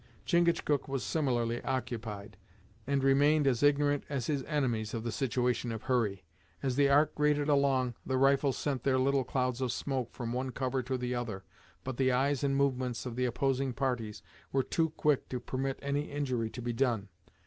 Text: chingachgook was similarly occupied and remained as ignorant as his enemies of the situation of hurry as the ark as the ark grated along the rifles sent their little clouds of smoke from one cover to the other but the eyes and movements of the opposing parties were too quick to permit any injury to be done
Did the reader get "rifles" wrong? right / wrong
right